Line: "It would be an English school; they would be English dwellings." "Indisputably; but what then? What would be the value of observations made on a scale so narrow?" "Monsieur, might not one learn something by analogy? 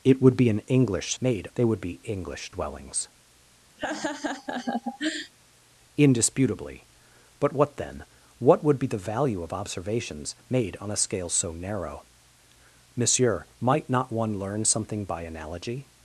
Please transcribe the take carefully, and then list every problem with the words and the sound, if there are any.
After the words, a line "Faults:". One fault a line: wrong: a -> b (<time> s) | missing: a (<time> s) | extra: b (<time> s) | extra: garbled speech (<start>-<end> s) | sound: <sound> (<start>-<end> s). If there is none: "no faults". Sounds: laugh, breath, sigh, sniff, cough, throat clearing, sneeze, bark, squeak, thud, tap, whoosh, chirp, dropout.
"It would be an English made; they would be English dwellings." "Indisputably; but what then? What would be the value of observations made on a scale so narrow?" "Monsieur, might not one learn something by analogy?
Faults:
wrong: school -> made (1.2 s)
sound: laugh (3.8-5.3 s)